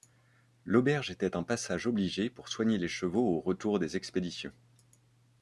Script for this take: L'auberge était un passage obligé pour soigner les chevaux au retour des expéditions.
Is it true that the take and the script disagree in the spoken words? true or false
false